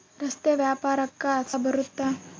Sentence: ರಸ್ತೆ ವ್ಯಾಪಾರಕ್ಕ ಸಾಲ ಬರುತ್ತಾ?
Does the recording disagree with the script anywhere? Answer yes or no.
yes